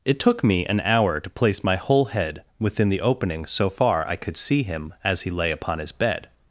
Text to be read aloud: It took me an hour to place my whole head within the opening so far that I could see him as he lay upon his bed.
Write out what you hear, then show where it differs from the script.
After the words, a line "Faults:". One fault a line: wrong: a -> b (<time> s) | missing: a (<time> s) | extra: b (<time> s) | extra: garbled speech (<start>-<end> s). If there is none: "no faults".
It took me an hour to place my whole head within the opening so far I could see him as he lay upon his bed.
Faults:
missing: that (4.1 s)